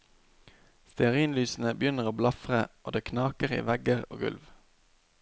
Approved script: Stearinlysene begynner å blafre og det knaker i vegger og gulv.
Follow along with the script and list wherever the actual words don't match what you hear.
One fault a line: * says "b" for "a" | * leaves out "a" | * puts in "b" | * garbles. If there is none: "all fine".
all fine